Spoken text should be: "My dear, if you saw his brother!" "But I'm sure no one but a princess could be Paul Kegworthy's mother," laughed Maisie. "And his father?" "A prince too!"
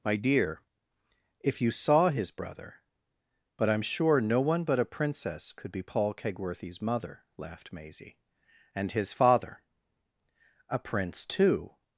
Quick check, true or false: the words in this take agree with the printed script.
true